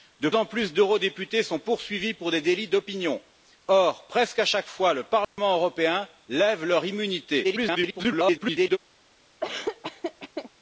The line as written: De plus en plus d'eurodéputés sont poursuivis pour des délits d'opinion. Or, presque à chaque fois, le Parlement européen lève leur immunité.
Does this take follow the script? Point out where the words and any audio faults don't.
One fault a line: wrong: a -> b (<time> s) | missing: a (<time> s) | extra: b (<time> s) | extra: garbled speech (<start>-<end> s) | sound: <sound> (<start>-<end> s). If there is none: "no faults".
missing: plus (0.3 s)
sound: dropout (5.2-5.4 s)
extra: garbled speech (7.4-8.8 s)
sound: laugh (9.4-10.5 s)